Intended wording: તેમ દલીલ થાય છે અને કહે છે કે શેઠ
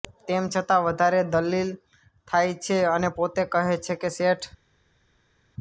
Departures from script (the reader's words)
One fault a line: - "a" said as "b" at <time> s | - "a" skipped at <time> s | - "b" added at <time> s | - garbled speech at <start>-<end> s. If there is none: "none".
- "છતાં વધારે" added at 0.5 s
- "પોતે" added at 3.1 s